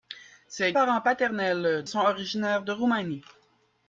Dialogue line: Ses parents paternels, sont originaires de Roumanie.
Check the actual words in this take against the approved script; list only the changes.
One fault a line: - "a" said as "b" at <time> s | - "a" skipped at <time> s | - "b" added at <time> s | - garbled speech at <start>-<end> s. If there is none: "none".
none